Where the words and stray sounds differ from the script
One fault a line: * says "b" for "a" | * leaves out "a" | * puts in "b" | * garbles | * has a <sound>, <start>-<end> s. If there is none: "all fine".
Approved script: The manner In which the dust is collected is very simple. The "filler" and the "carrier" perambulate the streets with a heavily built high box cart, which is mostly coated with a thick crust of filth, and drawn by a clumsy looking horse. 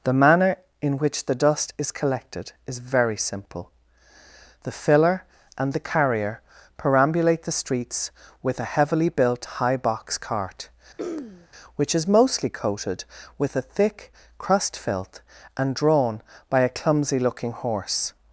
* has a throat clearing, 11.0-11.5 s
* leaves out "of"